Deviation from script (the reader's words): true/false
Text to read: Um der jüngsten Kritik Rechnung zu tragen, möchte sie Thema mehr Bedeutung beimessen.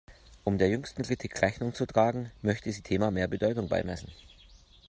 false